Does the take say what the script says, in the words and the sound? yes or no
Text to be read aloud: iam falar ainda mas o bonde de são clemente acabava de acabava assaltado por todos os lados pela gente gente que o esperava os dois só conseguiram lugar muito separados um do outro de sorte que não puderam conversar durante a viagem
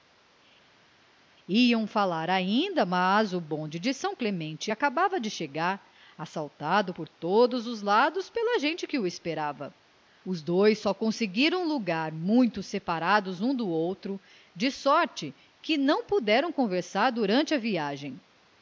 no